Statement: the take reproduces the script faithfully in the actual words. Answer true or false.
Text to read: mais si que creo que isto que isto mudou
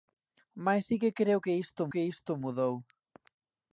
true